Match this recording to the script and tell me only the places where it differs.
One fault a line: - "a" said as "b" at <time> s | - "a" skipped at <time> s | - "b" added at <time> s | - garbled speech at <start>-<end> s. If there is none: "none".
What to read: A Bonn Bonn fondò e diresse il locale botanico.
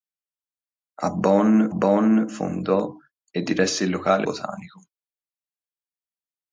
none